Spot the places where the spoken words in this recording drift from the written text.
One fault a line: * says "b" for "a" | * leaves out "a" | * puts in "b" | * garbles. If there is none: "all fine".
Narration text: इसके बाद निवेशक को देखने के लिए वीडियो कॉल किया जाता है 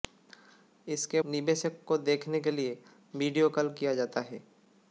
* leaves out "बाद"